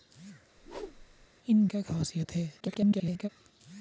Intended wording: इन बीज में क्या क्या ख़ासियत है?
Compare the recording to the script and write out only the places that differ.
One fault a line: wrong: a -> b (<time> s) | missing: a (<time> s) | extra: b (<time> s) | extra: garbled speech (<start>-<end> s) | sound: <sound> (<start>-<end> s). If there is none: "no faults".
sound: whoosh (0.6-1.3 s)
missing: बीज में क्या (1.7 s)
extra: garbled speech (2.6-3.3 s)